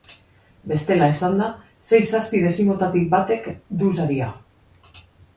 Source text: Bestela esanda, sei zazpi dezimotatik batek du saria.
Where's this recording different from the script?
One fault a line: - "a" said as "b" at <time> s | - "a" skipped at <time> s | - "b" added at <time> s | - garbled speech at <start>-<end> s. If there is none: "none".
none